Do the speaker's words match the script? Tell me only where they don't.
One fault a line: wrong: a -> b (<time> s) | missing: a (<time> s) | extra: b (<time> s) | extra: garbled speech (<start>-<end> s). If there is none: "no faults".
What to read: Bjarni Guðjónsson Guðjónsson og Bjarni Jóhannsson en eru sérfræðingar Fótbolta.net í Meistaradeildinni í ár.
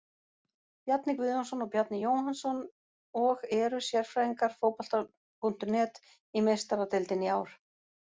missing: Guðjónsson (1.6 s)
wrong: en -> og (3.2 s)